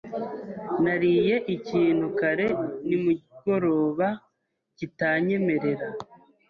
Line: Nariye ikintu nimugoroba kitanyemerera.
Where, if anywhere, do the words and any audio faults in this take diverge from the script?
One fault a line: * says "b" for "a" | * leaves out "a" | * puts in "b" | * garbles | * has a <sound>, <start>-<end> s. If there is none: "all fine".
* puts in "kare"